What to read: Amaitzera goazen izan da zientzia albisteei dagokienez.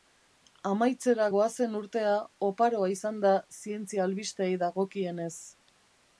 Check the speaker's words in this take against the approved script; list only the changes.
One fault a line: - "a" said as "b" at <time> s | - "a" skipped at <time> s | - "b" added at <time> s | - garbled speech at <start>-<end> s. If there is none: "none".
- "urtea oparoa" added at 1.8 s